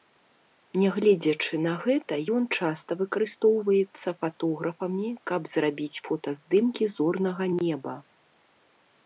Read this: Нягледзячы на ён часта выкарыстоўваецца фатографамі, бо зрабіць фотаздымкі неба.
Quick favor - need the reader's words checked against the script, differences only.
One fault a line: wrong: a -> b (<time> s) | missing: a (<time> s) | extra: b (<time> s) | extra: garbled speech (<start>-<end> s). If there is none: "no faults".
extra: гэта (1.8 s)
wrong: бо -> каб (5.3 s)
extra: зорнага (7.0 s)